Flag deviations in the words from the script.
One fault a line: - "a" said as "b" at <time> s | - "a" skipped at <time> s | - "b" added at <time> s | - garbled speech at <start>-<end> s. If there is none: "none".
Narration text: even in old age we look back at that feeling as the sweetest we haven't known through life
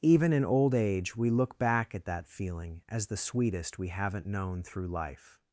none